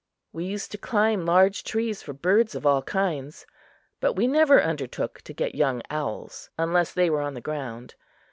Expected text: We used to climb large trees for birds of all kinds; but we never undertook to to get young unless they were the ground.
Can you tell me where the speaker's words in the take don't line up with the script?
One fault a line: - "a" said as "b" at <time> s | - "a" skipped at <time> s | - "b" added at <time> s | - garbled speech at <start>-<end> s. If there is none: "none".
- "to" skipped at 5.3 s
- "owls" added at 5.9 s
- "on" added at 7.2 s